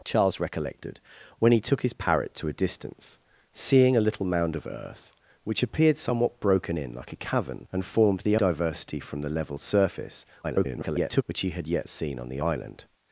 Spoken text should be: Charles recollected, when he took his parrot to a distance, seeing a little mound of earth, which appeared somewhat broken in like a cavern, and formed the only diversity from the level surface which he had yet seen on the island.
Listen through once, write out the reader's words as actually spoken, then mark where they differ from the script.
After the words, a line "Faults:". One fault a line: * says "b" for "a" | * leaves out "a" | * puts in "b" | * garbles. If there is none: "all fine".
Charles recollected, when he took his parrot to a distance, seeing a little mound of earth, which appeared somewhat broken in like a cavern, and formed the diversity from the level surface [garbled] which he had yet seen on the island.
Faults:
* leaves out "only"
* garbles